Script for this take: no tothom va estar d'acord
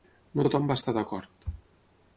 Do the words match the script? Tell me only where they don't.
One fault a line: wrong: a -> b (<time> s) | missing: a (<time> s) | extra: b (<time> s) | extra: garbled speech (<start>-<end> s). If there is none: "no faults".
no faults